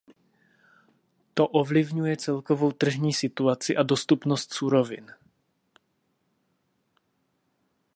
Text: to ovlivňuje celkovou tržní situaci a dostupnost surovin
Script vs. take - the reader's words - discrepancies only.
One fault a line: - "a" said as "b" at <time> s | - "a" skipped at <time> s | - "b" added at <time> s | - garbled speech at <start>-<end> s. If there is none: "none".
none